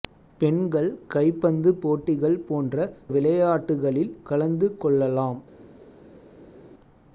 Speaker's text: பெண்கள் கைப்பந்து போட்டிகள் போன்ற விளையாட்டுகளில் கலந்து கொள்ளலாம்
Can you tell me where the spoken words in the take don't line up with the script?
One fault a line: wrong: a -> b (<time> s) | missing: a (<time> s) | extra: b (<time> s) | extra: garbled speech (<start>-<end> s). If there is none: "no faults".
no faults